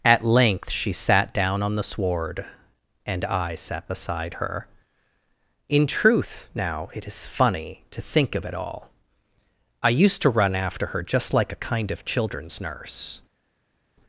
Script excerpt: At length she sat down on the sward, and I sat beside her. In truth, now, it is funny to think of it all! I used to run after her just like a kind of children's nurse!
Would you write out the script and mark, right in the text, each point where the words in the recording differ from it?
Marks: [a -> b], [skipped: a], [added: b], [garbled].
At length she sat down on the sward, and I sat beside her. In truth, now, it is funny to think of it all! I used to run after her just like a kind of children's nurse!